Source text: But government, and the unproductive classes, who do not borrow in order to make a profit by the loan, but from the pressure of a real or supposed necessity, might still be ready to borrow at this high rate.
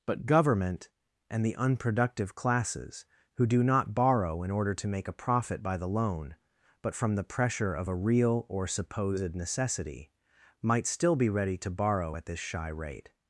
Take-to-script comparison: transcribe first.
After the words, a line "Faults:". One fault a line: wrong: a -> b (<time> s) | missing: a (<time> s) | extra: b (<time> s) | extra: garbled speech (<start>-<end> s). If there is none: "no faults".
But government, and the unproductive classes, who do not borrow in order to make a profit by the loan, but from the pressure of a real or supposed necessity, might still be ready to borrow at this shy rate.
Faults:
wrong: high -> shy (12.4 s)